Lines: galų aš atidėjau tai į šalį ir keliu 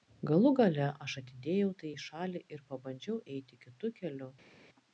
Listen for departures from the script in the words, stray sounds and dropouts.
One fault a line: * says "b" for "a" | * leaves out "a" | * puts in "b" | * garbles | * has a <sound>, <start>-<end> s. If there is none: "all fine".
* puts in "gale"
* puts in "pabandžiau eiti kitu"